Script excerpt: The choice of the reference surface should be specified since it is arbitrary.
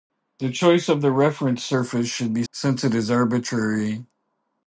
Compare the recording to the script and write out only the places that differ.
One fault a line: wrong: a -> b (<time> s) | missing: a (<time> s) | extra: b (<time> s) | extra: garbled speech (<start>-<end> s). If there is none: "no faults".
missing: specified (2.4 s)